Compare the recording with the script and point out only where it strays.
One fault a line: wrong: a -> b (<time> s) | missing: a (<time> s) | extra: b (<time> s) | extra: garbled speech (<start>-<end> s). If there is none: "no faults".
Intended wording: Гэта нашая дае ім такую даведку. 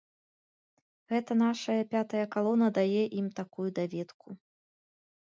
extra: пятая калона (1.9 s)